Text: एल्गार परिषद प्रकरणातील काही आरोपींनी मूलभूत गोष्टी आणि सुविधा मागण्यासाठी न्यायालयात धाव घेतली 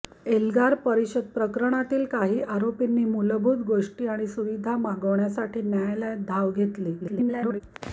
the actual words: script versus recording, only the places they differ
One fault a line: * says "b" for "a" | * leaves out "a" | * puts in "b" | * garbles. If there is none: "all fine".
* garbles